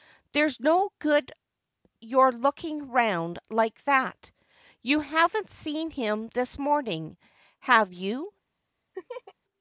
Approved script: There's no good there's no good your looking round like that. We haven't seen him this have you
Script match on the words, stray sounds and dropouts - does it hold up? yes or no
no